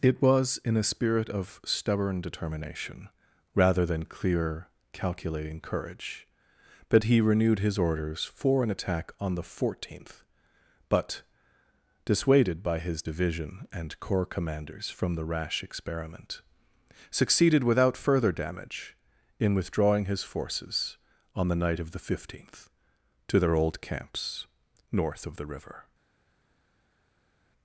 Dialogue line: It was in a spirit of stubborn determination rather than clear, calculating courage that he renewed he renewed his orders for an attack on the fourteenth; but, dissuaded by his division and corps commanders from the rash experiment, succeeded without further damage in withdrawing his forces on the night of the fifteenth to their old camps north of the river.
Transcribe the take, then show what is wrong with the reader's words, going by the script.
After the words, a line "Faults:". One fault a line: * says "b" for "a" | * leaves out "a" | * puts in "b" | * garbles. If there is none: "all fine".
It was in a spirit of stubborn determination rather than clear, calculating courage that he renewed his orders for an attack on the fourteenth; but, dissuaded by his division and corps commanders from the rash experiment, succeeded without further damage in withdrawing his forces on the night of the fifteenth to their old camps north of the river.
Faults:
* leaves out "he renewed"